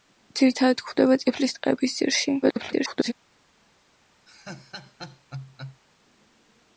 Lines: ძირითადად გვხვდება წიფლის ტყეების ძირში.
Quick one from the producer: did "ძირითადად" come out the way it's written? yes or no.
yes